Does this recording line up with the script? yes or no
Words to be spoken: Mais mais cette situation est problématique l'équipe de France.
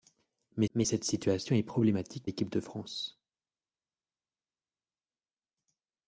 yes